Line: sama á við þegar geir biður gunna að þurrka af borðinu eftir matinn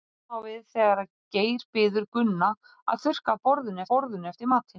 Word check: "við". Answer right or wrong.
right